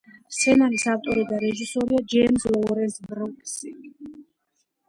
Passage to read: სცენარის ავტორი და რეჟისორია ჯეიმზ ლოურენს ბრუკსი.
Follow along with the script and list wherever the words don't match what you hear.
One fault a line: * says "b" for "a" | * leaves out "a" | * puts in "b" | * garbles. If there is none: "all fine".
all fine